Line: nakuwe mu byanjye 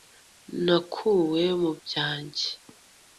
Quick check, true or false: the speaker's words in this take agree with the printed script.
true